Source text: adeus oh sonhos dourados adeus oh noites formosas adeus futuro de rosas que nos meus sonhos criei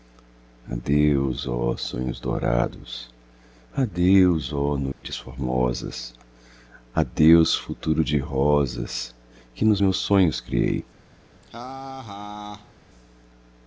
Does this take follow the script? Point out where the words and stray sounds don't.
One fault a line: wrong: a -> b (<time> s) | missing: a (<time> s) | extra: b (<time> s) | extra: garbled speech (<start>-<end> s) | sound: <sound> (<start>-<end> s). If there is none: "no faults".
sound: dropout (4.9-5.0 s)
sound: laugh (11.4-12.7 s)